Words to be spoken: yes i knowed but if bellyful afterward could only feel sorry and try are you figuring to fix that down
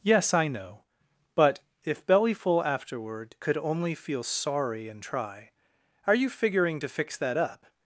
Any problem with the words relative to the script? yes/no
yes